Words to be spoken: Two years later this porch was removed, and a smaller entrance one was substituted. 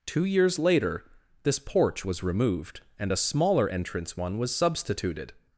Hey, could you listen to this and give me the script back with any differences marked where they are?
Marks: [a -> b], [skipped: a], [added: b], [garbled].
Two years later this porch was removed, and a smaller entrance one was substituted.